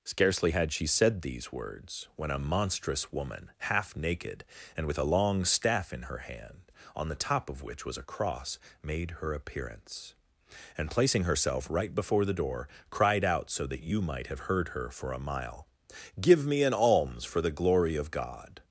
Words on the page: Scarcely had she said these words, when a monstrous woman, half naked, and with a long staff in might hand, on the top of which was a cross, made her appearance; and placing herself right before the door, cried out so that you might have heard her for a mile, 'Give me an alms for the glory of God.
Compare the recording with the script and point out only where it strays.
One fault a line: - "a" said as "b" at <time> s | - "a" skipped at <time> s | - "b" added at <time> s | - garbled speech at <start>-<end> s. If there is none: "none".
- "might" said as "her" at 6.0 s